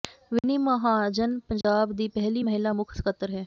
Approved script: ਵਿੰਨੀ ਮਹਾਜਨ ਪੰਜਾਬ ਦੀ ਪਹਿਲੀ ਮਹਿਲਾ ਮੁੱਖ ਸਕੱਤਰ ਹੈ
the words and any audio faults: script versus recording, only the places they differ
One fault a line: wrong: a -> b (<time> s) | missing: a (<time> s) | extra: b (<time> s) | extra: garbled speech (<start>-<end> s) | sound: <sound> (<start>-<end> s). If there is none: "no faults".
sound: dropout (0.4-0.4 s)
sound: dropout (1.6-1.6 s)